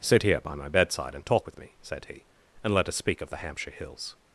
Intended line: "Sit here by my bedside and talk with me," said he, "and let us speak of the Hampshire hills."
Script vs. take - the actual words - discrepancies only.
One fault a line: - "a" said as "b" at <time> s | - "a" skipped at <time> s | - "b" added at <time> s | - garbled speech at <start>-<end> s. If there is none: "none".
none